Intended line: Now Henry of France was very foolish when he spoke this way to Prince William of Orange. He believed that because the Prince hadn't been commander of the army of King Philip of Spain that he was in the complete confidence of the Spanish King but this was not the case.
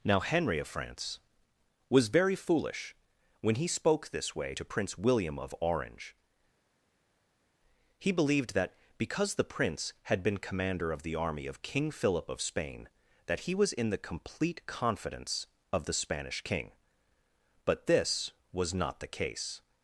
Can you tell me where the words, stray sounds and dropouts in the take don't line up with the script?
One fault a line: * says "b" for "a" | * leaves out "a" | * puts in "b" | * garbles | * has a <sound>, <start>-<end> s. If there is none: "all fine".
* says "had" for "hadn't"